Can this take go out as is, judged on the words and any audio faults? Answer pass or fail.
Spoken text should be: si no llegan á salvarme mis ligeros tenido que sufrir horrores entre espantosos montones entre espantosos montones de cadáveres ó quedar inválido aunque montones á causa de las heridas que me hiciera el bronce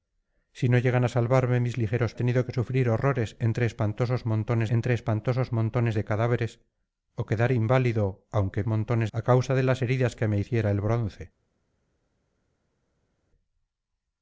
pass